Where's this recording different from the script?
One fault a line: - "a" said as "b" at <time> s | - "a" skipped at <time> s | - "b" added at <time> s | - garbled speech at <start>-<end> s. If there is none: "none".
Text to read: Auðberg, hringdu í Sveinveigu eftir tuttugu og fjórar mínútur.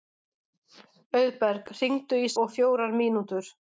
- "Sveinveigu eftir tuttugu" skipped at 2.3 s